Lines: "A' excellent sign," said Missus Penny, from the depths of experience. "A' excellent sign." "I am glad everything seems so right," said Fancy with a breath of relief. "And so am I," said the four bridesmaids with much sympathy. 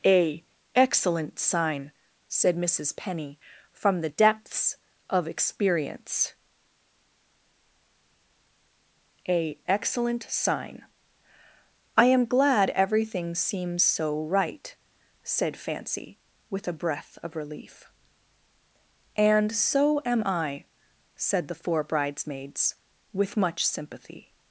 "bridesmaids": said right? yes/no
yes